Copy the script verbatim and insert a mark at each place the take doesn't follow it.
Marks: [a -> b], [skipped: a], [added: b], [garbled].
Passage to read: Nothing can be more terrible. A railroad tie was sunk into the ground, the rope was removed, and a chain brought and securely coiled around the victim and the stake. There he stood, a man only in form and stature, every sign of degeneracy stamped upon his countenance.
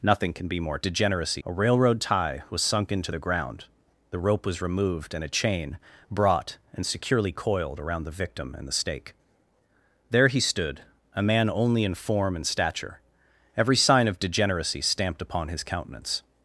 Nothing can be more [terrible. -> degeneracy] A railroad tie was sunk into the ground, the rope was removed, and a chain brought and securely coiled around the victim and the stake. There he stood, a man only in form and stature, every sign of degeneracy stamped upon his countenance.